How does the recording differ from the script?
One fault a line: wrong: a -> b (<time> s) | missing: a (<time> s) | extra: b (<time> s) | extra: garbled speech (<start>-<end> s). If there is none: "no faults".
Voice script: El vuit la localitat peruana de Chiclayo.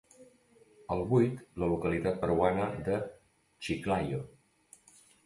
no faults